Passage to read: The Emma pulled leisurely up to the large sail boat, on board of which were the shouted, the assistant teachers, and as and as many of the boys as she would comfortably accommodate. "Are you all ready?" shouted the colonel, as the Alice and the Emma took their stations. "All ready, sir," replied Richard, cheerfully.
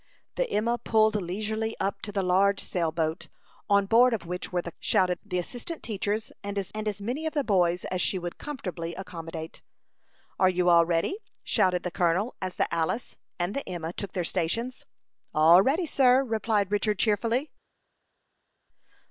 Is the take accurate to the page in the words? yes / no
yes